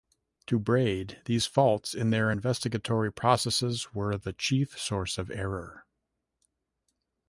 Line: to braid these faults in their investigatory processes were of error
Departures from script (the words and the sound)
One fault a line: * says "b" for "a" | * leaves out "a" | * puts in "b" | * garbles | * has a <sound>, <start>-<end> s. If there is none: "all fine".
* puts in "the chief source"